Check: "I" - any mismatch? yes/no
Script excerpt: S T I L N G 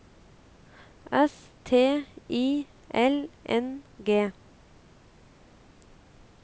no